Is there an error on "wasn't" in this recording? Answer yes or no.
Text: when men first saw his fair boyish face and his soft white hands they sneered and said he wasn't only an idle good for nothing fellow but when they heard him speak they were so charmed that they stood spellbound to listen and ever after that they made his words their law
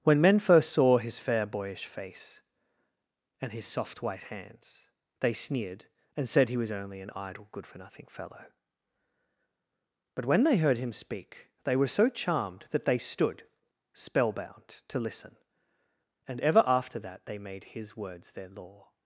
yes